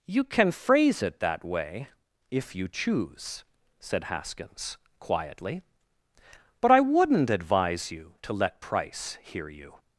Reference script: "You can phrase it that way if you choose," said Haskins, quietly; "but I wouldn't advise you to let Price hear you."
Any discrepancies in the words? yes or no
no